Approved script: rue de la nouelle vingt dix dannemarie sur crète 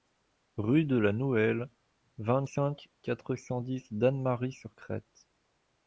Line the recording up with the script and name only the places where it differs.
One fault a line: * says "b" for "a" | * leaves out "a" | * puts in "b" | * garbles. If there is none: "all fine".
* puts in "cinq quatre cent"